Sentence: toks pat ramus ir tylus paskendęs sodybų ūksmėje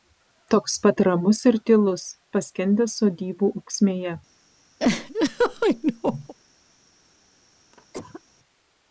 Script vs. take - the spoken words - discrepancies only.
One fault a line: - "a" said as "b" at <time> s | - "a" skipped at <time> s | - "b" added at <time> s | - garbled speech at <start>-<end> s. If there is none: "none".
none